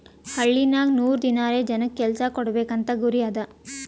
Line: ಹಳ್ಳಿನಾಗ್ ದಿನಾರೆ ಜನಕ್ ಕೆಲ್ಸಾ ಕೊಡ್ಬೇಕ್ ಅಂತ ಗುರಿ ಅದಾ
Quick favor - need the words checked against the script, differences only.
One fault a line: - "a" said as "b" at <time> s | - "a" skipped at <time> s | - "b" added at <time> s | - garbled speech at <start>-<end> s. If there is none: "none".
- "ನೂರ್" added at 0.9 s